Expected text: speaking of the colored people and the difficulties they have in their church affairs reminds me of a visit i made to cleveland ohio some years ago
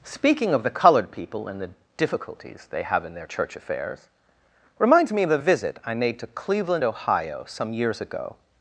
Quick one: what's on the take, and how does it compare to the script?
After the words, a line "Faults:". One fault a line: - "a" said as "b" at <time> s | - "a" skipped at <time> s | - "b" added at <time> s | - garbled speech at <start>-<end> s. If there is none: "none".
speaking of the colored people and the difficulties they have in their church affairs reminds me of a visit i made to cleveland ohio some years ago
Faults:
none